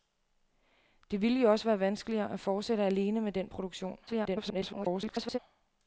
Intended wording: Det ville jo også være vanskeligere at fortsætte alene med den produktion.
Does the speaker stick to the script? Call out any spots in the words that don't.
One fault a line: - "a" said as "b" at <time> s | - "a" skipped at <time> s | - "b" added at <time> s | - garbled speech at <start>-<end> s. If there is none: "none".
- garbled speech at 4.1-5.4 s